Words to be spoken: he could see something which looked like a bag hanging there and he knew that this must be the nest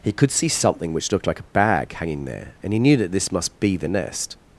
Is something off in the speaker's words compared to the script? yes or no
no